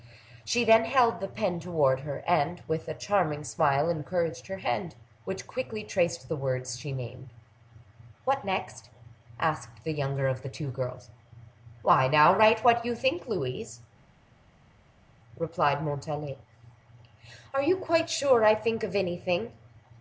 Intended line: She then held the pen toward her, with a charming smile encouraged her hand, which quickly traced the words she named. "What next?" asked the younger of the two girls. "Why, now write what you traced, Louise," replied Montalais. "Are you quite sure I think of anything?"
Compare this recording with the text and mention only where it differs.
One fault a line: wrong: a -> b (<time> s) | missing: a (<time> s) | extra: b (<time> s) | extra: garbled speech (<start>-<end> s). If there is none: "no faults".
extra: and (2.2 s)
wrong: traced -> think (12.9 s)